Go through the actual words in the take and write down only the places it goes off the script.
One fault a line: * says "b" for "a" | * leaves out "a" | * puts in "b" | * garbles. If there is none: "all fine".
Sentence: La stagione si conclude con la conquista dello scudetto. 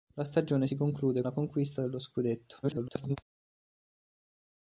* leaves out "con"
* garbles